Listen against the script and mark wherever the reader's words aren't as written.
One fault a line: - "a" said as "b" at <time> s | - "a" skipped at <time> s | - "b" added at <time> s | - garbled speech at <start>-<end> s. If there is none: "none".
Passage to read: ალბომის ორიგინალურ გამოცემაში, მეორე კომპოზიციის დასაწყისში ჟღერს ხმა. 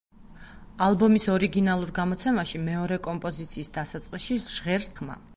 none